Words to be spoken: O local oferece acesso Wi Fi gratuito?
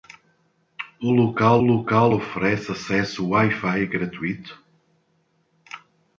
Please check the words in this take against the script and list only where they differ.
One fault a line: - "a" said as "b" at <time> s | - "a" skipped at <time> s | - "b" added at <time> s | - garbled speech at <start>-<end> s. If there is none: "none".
- "local" added at 1.6 s